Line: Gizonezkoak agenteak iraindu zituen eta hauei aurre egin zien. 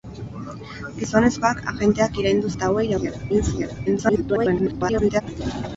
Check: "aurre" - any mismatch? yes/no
yes